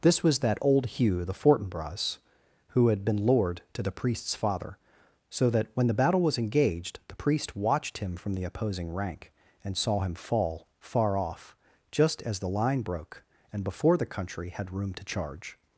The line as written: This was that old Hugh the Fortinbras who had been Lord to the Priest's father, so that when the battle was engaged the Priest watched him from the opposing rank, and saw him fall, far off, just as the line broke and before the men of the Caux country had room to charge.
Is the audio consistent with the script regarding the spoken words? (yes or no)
no